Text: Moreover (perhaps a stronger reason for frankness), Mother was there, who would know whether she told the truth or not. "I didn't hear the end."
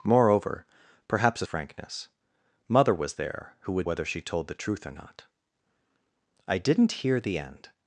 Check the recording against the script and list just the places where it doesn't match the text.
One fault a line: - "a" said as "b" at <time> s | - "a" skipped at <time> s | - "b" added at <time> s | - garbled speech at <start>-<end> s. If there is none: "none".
- "stronger reason for" skipped at 1.5 s
- "know" skipped at 3.9 s